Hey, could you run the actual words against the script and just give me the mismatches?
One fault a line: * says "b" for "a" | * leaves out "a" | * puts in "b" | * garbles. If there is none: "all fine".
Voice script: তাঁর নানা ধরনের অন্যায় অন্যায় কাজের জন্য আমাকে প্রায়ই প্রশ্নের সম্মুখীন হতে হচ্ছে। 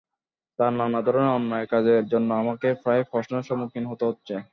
* leaves out "অন্যায়"